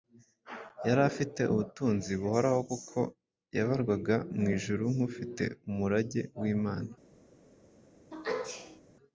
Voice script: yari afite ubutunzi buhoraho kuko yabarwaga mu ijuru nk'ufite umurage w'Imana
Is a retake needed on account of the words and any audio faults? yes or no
yes